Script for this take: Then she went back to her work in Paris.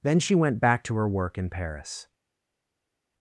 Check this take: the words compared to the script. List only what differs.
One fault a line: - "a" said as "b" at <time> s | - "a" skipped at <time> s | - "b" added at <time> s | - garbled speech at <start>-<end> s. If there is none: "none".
none